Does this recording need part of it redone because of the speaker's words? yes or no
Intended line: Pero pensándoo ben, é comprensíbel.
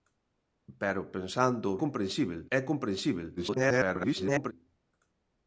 yes